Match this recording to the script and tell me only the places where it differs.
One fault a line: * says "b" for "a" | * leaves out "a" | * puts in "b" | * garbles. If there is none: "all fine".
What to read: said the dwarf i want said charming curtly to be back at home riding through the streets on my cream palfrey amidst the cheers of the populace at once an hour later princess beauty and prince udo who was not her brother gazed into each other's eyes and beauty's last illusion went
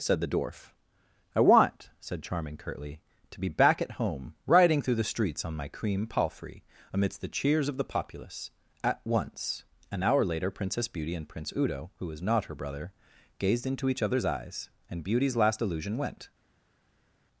all fine